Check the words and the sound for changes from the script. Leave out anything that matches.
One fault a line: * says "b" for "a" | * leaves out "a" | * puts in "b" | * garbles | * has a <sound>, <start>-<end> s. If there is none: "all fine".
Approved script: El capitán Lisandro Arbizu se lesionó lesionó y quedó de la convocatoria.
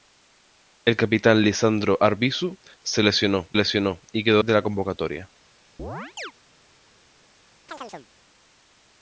* has a chirp, 5.8-6.3 s
* has a chirp, 7.7-8.1 s